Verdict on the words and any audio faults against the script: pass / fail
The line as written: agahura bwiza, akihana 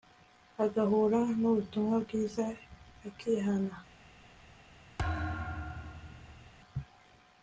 fail